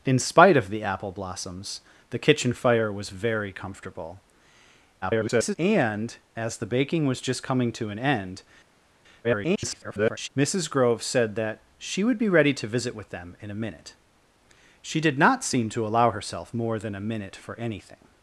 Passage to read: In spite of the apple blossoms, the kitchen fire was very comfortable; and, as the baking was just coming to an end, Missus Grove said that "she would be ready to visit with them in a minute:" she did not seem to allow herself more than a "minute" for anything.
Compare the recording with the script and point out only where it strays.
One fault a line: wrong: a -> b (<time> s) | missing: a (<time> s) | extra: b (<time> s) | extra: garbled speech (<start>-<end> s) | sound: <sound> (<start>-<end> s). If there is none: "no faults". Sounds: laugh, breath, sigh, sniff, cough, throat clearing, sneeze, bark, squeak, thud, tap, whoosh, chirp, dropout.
extra: garbled speech (5.0-5.5 s)
extra: garbled speech (9.2-10.3 s)